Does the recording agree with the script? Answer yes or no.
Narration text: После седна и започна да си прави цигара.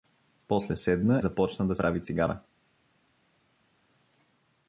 no